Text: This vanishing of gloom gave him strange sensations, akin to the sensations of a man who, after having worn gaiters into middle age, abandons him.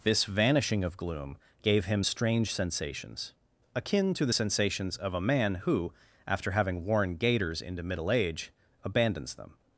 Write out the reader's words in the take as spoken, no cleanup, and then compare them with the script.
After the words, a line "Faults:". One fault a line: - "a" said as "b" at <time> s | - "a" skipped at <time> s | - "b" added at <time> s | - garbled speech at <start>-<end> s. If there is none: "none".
This vanishing of gloom gave him strange sensations, akin to the sensations of a man who, after having worn gaiters into middle age, abandons them.
Faults:
- "him" said as "them" at 9.4 s